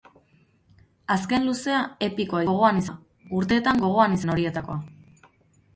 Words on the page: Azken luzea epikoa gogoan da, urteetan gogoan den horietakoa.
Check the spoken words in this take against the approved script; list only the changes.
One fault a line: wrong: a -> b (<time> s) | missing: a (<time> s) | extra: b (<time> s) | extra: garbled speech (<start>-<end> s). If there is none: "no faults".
no faults